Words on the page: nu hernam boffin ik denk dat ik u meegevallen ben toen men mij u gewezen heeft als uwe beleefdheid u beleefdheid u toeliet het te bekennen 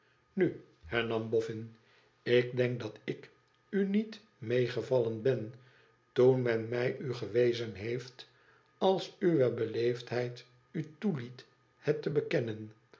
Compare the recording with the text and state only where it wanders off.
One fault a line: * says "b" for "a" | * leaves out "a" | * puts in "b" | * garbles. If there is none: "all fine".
* puts in "niet"
* leaves out "beleefdheid u"